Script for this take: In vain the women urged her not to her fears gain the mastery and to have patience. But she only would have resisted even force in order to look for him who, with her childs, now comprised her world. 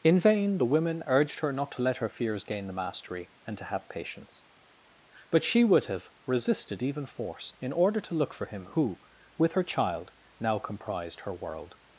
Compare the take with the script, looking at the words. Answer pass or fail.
fail